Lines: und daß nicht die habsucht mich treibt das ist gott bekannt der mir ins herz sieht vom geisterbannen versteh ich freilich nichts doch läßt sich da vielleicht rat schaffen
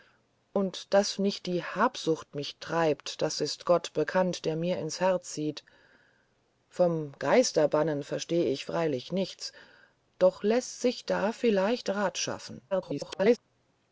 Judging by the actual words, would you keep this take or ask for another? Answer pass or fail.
fail